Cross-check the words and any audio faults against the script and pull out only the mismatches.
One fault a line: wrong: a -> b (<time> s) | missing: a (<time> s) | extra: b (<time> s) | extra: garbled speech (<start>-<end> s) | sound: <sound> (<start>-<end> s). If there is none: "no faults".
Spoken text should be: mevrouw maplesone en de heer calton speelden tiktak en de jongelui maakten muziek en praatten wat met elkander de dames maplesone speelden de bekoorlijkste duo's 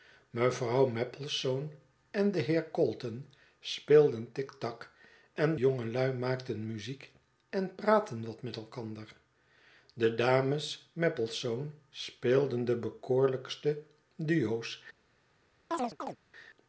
missing: de (5.6 s)
sound: chirp (15.7-16.2 s)